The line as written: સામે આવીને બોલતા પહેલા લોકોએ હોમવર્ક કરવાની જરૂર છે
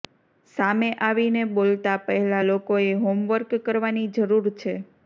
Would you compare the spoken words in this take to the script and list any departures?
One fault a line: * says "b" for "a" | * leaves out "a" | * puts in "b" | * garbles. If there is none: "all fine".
all fine